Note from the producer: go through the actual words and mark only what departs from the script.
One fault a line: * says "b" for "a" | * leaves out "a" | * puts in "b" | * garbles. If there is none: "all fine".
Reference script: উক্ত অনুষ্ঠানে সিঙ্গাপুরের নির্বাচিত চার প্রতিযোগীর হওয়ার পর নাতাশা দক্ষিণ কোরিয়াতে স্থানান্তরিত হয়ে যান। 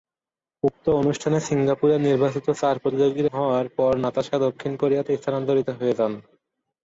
all fine